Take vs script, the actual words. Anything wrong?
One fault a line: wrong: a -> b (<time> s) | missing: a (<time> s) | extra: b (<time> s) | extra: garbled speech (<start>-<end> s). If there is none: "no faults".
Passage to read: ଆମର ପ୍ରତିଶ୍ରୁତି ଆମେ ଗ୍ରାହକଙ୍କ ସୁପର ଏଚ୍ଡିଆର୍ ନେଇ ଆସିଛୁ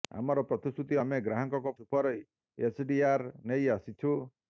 no faults